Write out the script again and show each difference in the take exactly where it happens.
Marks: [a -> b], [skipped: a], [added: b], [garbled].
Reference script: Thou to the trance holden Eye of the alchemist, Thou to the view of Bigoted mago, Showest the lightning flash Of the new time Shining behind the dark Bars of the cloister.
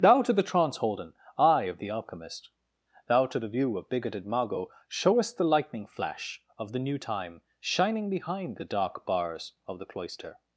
Thou to the trance holden Eye of the alchemist, Thou to the view of Bigoted mago, Showest the lightning flash Of the new time Shining behind the dark Bars of the cloister.